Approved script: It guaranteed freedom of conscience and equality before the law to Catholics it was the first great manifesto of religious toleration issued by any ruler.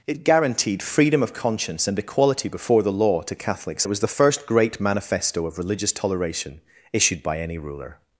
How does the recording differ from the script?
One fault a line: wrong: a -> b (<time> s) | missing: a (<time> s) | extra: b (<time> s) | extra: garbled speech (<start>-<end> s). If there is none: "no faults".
no faults